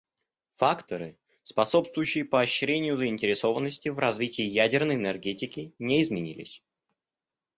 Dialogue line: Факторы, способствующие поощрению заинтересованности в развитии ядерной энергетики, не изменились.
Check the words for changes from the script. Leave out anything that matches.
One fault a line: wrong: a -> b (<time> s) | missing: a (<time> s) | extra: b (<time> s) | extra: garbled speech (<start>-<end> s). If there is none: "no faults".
no faults